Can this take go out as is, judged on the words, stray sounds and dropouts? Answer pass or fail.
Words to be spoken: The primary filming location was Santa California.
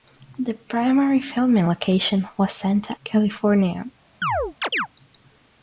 fail